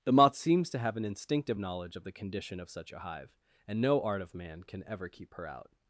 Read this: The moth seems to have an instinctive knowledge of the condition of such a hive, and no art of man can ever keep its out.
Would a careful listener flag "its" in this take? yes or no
yes